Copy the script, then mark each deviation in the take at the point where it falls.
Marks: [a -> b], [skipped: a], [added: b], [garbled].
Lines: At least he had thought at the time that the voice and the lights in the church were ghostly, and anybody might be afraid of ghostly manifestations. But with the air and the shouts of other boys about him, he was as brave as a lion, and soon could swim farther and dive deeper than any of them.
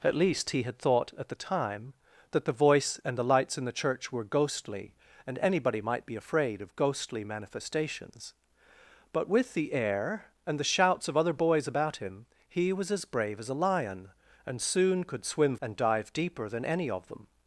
At least he had thought at the time that the voice and the lights in the church were ghostly, and anybody might be afraid of ghostly manifestations. But with the air and the shouts of other boys about him, he was as brave as a lion, and soon could swim [skipped: farther] and dive deeper than any of them.